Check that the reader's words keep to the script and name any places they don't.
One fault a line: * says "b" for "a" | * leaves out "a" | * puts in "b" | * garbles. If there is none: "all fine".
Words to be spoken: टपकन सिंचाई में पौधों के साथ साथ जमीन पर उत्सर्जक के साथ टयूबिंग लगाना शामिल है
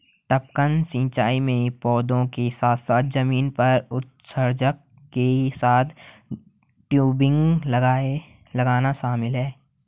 all fine